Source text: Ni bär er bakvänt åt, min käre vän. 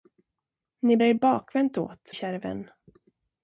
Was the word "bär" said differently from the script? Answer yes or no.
yes